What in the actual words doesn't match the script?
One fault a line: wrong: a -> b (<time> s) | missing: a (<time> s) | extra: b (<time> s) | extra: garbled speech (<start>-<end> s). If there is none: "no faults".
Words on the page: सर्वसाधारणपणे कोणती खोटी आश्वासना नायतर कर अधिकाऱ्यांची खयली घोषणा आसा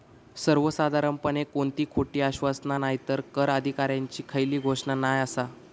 extra: नाय (4.9 s)